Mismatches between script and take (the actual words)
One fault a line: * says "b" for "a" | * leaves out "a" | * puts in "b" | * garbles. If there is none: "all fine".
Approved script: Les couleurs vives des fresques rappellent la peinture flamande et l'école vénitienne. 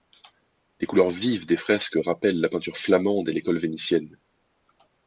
all fine